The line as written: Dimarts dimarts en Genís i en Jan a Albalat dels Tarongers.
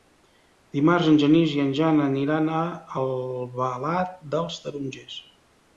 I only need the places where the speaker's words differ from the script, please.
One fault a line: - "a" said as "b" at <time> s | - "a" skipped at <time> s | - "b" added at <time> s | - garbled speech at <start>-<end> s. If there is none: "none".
- "dimarts" skipped at 1.1 s
- "aniran" added at 2.1 s